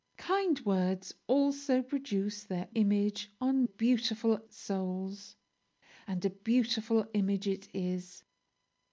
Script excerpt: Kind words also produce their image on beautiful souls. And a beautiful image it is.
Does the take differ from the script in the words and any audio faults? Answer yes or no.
no